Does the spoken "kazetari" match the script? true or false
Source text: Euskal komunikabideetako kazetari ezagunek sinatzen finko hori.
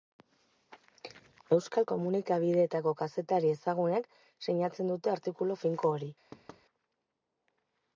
true